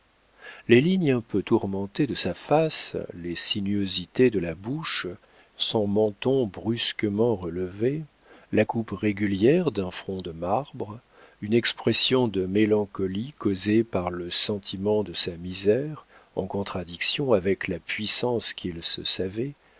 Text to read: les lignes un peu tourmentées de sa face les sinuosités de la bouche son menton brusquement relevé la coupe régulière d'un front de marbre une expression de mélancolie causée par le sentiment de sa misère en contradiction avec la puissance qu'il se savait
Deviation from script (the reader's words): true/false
false